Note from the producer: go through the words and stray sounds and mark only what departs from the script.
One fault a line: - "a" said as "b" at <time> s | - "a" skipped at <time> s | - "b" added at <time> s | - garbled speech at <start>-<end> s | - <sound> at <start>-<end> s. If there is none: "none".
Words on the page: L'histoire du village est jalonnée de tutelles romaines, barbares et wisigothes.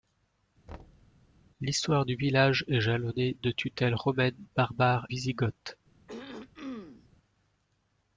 - thud at 0.7-1.2 s
- "et" skipped at 5.1 s
- throat clearing at 6.1-7.1 s